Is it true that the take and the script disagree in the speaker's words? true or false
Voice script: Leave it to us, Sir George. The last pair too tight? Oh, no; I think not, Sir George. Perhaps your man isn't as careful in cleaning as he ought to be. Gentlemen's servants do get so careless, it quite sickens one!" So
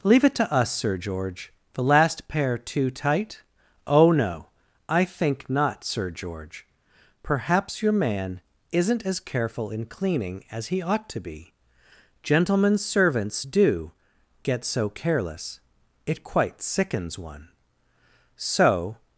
false